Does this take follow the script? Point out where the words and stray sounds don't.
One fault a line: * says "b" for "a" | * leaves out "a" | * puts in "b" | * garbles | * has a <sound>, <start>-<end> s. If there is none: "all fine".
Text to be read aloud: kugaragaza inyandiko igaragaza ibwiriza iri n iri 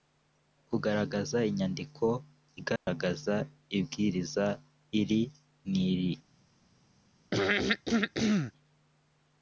* has a dropout, 2.8-2.9 s
* has a throat clearing, 7.3-8.5 s